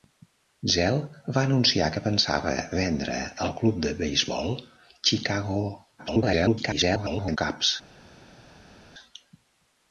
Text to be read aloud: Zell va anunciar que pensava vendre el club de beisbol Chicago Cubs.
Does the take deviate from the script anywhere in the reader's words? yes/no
yes